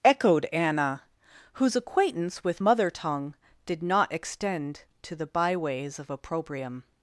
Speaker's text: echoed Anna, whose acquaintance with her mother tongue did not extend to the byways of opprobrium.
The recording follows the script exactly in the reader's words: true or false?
false